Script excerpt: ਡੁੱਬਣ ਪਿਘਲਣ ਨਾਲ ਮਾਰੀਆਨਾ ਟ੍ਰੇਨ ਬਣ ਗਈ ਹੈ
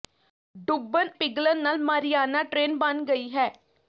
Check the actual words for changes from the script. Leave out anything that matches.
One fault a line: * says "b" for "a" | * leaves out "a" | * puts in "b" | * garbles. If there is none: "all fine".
all fine